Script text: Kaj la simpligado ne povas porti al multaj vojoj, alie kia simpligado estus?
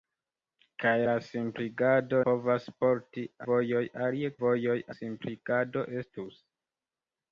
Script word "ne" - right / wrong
wrong